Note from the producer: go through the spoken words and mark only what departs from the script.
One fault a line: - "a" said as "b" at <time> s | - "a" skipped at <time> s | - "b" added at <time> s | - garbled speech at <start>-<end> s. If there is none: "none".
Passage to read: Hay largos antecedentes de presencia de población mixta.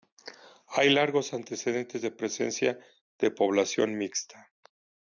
none